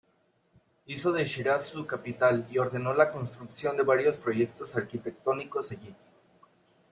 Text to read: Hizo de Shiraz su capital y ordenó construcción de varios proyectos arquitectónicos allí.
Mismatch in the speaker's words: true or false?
true